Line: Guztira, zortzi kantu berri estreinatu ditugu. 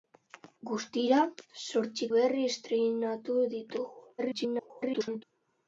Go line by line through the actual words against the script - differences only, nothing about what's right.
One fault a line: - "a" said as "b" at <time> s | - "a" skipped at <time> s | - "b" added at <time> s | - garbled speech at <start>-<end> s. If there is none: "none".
- "kantu" skipped at 2.1 s
- garbled speech at 4.2-5.2 s